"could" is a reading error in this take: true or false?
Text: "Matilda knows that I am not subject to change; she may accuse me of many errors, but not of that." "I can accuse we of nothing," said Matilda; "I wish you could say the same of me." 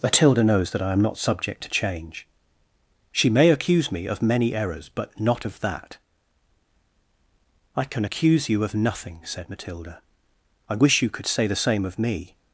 false